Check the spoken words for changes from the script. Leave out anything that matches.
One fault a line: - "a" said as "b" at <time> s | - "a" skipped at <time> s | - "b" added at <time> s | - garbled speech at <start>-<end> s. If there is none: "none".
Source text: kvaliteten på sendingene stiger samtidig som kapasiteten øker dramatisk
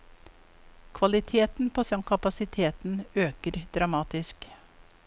- "sendingene stiger samtidig" skipped at 1.8 s